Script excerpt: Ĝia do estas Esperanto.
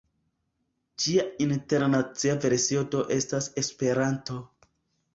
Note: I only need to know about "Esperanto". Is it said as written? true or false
true